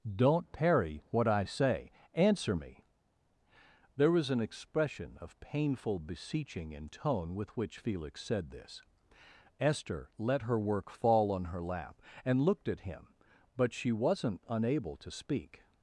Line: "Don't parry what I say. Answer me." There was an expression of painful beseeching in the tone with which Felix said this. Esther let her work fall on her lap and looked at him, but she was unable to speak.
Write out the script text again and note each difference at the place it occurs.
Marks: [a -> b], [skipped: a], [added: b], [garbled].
"Don't parry what I say. Answer me." There was an expression of painful beseeching in [skipped: the] tone with which Felix said this. Esther let her work fall on her lap and looked at him, but she [was -> wasn't] unable to speak.